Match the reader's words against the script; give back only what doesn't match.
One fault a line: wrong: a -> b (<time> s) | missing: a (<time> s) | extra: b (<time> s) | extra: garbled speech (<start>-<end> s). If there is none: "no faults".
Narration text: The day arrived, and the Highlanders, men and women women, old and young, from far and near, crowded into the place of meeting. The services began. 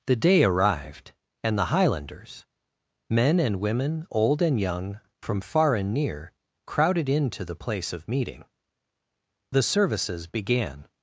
missing: women (4.1 s)